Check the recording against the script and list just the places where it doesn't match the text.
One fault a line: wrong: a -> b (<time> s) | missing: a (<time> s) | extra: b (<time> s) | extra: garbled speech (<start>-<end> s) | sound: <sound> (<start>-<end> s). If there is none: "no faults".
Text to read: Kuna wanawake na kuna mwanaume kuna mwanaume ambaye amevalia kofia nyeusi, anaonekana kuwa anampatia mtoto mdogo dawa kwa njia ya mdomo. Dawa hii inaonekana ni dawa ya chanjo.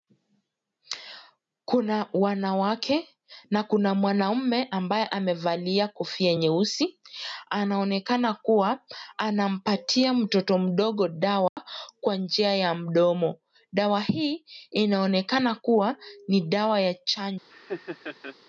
missing: kuna mwanaume (4.6 s)
sound: dropout (11.5-11.6 s)
extra: kuwa (15.6 s)
sound: laugh (17.5-18.4 s)